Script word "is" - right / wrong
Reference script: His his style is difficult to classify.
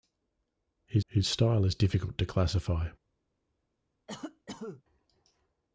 right